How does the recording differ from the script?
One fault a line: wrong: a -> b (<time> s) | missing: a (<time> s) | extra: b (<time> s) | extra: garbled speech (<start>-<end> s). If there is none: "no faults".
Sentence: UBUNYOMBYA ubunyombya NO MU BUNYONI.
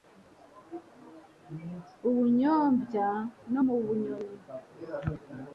missing: ubunyombya (3.1 s)